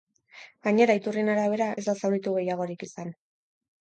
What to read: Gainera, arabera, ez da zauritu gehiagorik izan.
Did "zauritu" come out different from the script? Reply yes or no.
no